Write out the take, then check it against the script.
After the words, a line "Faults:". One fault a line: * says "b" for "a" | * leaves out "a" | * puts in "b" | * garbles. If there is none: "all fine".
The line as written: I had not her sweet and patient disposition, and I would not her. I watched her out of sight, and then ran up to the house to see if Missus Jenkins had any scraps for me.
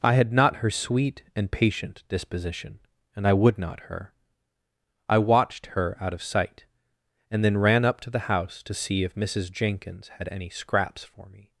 I had not her sweet and patient disposition, and I would not her. I watched her out of sight, and then ran up to the house to see if Missus Jenkins had any scraps for me.
Faults:
all fine